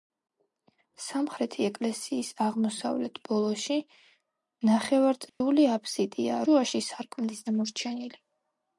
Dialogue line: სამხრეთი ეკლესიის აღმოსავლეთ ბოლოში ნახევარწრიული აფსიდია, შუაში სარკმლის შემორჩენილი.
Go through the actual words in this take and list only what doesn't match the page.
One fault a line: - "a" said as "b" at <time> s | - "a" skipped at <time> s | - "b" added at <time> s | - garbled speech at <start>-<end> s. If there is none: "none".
none